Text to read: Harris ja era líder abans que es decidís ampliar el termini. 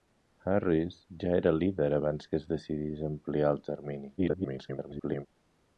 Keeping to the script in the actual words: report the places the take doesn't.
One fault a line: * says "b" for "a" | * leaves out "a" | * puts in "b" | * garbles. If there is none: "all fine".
* garbles